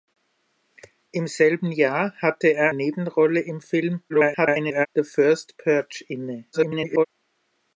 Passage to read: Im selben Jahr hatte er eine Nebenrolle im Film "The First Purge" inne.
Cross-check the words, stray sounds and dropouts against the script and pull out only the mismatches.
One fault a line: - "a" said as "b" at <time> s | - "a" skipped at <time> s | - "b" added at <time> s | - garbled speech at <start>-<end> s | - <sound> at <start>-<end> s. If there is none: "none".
- "eine" skipped at 2.7 s
- garbled speech at 4.1-4.9 s
- garbled speech at 6.5-7.1 s